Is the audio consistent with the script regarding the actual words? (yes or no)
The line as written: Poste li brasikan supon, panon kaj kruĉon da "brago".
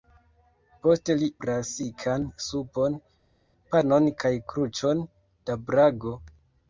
yes